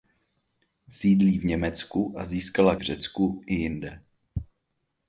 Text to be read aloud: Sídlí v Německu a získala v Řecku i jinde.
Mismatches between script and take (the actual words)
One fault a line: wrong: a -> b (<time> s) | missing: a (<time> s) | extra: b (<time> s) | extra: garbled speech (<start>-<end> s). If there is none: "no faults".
no faults